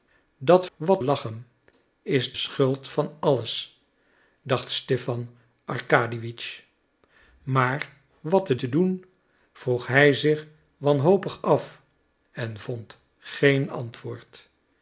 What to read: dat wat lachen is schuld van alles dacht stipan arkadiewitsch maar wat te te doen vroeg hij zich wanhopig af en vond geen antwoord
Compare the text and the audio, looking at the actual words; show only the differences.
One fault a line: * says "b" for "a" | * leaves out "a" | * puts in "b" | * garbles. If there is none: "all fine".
all fine